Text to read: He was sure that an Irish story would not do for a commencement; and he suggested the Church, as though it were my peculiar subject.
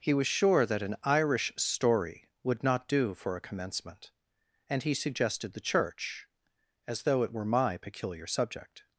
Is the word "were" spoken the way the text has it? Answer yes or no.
yes